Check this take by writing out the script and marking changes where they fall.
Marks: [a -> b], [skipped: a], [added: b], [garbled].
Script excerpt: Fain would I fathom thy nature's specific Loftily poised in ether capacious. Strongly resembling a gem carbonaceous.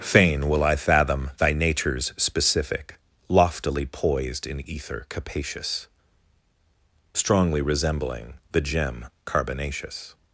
Fain [would -> will] I fathom thy nature's specific Loftily poised in ether capacious. Strongly resembling [a -> the] gem carbonaceous.